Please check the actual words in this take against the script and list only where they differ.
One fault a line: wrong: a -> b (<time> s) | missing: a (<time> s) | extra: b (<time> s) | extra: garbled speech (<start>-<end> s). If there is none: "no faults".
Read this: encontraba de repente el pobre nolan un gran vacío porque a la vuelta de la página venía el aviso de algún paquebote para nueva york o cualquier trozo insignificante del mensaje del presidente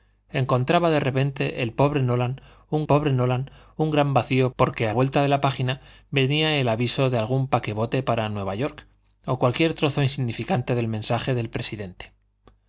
extra: pobre nolan un (2.8 s)
missing: la (4.9 s)